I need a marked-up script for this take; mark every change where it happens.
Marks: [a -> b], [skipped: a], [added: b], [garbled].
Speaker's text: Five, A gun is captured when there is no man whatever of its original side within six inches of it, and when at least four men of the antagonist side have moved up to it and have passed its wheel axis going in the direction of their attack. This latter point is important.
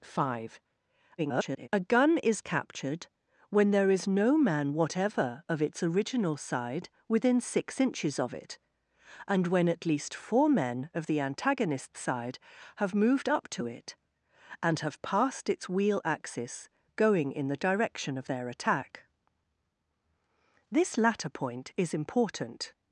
Five, [garbled] A gun is captured when there is no man whatever of its original side within six inches of it, and when at least four men of the antagonist side have moved up to it and have passed its wheel axis going in the direction of their attack. This latter point is important.